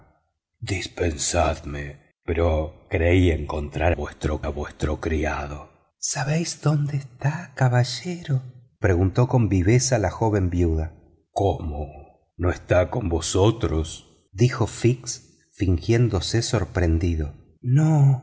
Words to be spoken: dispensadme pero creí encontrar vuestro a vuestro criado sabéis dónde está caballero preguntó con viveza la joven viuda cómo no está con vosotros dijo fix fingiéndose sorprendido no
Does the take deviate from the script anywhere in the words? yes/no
no